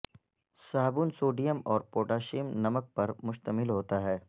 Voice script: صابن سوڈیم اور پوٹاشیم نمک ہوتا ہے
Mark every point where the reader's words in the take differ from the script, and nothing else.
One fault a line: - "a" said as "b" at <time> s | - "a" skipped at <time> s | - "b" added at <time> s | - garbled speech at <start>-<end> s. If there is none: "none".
- "پر مشتمل" added at 3.0 s